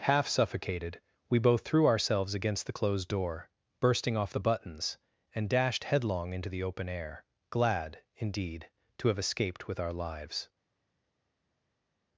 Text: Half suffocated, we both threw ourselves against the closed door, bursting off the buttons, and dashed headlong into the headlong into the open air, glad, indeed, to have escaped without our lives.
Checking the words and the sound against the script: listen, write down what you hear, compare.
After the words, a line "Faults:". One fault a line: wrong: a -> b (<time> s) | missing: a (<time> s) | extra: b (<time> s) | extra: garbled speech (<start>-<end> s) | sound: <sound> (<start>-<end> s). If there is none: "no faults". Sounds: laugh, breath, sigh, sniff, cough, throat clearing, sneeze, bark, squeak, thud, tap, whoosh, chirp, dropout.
Half suffocated, we both threw ourselves against the closed door, bursting off the buttons, and dashed headlong into the open air, glad, indeed, to have escaped with our lives.
Faults:
missing: headlong into the (6.6 s)
wrong: without -> with (9.7 s)